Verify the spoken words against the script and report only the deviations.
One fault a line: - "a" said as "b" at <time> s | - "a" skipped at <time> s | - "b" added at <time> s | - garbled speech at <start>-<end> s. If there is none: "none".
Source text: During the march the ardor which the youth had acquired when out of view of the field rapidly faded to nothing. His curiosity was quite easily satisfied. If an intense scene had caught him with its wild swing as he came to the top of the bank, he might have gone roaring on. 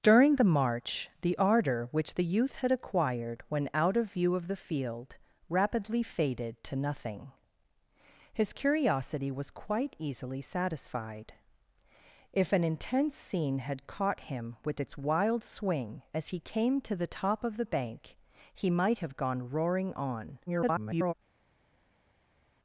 - garbled speech at 20.5-21.1 s